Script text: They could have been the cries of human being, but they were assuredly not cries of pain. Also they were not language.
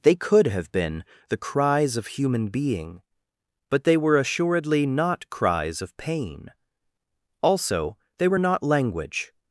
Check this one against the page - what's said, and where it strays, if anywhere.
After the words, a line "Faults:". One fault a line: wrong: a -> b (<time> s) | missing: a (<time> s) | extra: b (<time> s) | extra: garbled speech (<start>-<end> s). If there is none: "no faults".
They could have been the cries of human being, but they were assuredly not cries of pain. Also they were not language.
Faults:
no faults